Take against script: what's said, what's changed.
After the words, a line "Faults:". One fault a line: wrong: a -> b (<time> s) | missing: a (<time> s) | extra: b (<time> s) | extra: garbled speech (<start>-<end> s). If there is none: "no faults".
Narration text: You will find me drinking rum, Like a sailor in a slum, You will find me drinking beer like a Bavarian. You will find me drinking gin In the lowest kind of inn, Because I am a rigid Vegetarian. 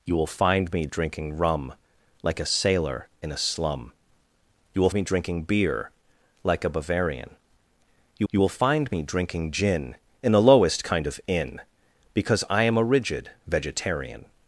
You will find me drinking rum, Like a sailor in a slum, You will me drinking beer like a Bavarian. You you will find me drinking gin In the lowest kind of inn, Because I am a rigid Vegetarian.
Faults:
missing: find (4.9 s)
extra: you (8.3 s)